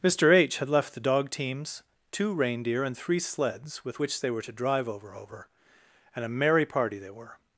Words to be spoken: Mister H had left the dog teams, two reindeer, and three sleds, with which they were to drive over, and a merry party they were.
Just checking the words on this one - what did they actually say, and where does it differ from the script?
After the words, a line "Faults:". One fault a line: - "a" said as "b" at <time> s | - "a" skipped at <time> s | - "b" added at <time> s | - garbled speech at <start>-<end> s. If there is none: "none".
Mister H had left the dog teams, two reindeer, and three sleds, with which they were to drive over over, and a merry party they were.
Faults:
- "over" added at 5.1 s